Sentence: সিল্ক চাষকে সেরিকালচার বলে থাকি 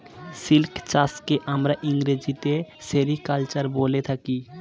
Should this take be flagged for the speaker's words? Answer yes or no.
yes